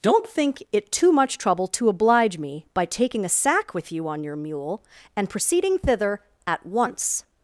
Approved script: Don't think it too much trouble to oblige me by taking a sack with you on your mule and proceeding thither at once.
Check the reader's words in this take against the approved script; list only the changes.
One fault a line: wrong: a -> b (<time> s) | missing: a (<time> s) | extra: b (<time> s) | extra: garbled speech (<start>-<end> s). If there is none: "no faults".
no faults